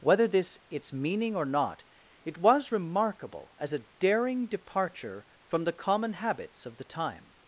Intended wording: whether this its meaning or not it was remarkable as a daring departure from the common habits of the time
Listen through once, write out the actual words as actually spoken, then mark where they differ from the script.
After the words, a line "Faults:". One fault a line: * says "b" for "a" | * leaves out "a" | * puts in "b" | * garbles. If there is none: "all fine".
whether this its meaning or not it was remarkable as a daring departure from the common habits of the time
Faults:
all fine